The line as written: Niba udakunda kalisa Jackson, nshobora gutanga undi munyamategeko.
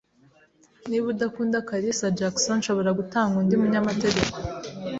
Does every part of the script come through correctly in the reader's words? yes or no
yes